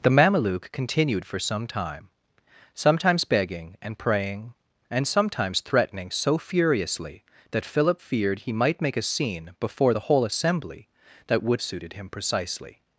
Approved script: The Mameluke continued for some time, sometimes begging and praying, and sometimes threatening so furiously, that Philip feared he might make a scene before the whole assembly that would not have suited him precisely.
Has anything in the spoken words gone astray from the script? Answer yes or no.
yes